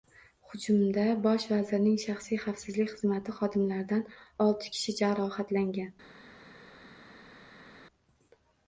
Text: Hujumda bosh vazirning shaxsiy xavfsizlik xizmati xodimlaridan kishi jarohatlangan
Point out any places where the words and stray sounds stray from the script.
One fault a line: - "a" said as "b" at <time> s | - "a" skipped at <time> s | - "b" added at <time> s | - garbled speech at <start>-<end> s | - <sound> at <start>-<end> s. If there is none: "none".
- "olti" added at 4.5 s